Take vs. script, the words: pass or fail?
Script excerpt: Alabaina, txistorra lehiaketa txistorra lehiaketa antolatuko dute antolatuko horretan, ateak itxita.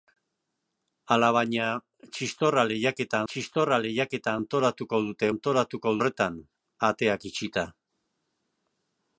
pass